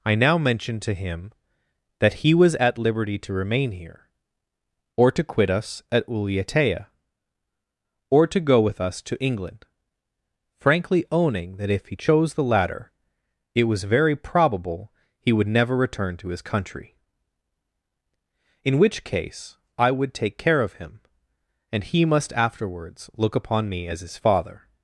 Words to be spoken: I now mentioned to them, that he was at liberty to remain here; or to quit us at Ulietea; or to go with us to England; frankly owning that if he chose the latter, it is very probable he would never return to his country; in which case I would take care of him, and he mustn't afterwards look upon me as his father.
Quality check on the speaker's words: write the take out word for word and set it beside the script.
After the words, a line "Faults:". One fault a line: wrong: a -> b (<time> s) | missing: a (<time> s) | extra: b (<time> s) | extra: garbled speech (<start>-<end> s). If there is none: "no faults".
I now mentioned to him, that he was at liberty to remain here; or to quit us at Ulietea; or to go with us to England; frankly owning that if he chose the latter, it was very probable he would never return to his country; in which case I would take care of him, and he must afterwards look upon me as his father.
Faults:
wrong: them -> him (0.9 s)
wrong: is -> was (13.7 s)
wrong: mustn't -> must (22.1 s)